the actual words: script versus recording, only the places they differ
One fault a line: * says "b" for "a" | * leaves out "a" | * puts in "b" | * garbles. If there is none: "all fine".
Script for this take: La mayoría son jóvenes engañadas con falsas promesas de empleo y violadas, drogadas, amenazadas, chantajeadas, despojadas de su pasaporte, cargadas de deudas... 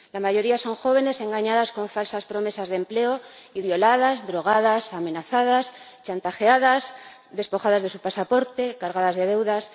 all fine